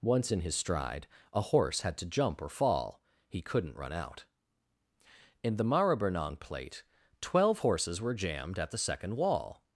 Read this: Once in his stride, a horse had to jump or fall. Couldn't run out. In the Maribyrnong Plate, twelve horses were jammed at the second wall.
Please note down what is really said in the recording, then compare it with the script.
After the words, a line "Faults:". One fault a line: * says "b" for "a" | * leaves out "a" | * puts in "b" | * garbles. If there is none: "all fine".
Once in his stride, a horse had to jump or fall. He couldn't run out. In the Maribyrnong Plate, twelve horses were jammed at the second wall.
Faults:
* puts in "He"